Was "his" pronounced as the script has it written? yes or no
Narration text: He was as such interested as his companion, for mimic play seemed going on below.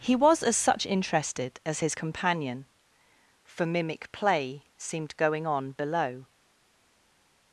yes